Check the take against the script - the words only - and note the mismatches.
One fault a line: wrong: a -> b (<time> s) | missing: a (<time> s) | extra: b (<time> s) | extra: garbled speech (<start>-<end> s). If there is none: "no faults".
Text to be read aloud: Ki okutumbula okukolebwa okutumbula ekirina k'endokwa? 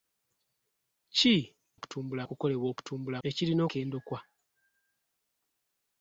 no faults